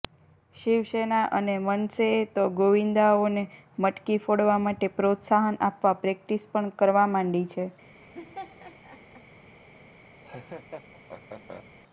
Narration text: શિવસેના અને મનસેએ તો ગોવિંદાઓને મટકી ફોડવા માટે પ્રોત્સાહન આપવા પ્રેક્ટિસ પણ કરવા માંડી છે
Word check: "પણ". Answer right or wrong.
right